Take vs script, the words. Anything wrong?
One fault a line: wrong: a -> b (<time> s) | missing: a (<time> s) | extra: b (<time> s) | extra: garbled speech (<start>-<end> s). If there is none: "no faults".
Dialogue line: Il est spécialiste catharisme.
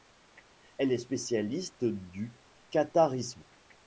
wrong: Il -> Elle (0.8 s)
extra: du (1.9 s)